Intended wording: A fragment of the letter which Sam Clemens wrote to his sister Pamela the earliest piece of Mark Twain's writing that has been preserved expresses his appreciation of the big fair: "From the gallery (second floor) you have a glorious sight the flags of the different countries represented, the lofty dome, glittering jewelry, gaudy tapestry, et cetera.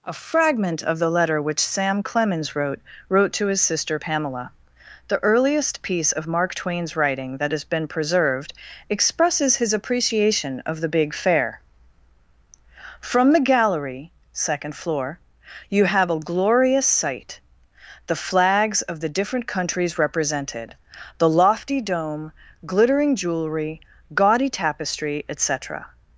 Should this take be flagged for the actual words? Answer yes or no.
yes